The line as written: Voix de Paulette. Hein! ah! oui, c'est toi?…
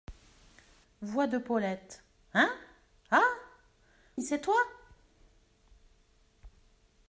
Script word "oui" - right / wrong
wrong